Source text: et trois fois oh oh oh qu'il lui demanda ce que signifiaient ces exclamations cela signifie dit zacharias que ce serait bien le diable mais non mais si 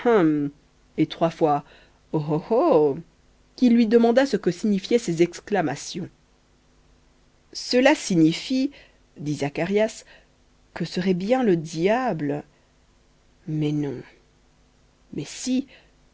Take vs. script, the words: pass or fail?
fail